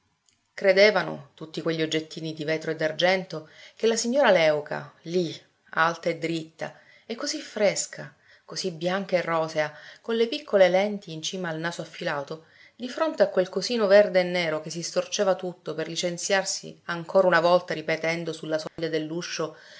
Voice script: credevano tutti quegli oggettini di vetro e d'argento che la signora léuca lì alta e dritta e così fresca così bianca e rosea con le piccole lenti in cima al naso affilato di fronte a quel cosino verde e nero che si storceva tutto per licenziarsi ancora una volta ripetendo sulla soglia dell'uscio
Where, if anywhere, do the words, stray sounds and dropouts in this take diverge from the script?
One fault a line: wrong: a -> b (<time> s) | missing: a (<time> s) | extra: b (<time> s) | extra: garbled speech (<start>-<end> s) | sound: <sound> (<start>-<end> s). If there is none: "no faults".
sound: dropout (18.7-18.8 s)